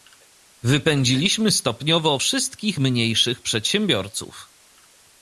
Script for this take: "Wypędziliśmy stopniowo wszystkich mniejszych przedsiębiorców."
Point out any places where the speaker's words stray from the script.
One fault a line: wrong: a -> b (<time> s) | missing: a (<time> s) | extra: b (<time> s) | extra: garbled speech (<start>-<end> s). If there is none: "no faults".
no faults